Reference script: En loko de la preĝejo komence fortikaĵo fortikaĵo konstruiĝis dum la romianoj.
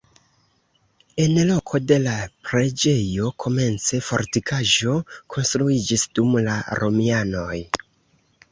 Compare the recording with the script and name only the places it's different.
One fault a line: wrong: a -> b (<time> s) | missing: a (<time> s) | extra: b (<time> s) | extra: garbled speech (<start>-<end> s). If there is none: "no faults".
missing: fortikaĵo (5.0 s)